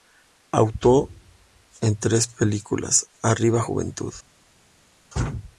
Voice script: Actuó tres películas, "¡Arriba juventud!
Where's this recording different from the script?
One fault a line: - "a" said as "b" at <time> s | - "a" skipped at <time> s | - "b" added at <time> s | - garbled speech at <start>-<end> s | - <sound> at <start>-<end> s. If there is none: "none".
- "en" added at 1.8 s